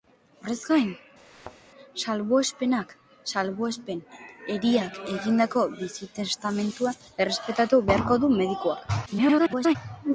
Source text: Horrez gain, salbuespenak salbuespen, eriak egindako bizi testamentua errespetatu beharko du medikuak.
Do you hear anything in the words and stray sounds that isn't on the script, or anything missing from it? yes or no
yes